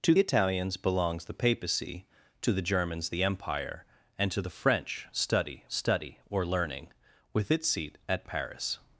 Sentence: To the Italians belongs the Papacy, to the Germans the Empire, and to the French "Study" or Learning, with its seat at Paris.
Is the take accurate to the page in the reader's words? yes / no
no